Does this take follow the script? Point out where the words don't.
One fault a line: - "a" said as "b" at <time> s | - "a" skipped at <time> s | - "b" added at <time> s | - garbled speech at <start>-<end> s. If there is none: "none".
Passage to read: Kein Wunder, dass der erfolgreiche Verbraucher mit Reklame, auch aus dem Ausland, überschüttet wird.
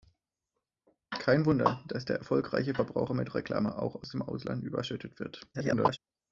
- garbled speech at 5.5-6.0 s